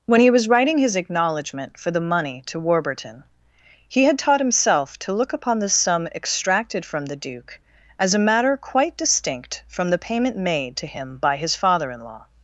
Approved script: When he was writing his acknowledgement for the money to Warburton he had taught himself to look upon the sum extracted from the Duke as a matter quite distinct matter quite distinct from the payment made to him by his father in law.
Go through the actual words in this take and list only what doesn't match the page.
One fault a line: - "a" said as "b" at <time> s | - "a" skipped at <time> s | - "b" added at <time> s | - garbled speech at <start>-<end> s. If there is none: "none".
- "matter quite distinct" skipped at 9.6 s